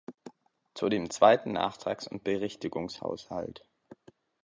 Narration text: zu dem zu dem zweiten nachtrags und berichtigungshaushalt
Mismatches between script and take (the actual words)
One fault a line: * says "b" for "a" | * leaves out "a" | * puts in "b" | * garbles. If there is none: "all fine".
* leaves out "zu dem"